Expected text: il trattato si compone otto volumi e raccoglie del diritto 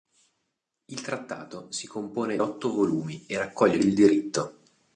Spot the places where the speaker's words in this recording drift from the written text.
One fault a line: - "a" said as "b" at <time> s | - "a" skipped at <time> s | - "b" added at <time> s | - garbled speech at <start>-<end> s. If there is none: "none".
none